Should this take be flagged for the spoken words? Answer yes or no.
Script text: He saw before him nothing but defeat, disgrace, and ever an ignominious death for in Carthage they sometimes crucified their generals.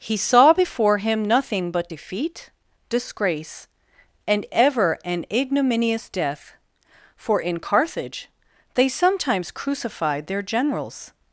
no